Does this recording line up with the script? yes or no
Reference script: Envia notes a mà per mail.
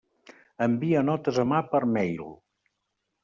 yes